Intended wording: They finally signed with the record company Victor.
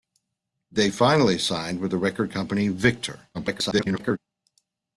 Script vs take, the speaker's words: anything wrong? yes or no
yes